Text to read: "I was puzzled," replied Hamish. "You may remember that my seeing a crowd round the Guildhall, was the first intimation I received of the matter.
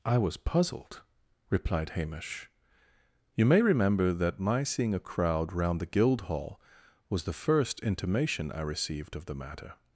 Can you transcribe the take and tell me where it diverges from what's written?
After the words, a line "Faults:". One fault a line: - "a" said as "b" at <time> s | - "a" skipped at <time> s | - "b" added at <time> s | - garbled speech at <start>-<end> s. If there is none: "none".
"I was puzzled," replied Hamish. "You may remember that my seeing a crowd round the Guildhall, was the first intimation I received of the matter.
Faults:
none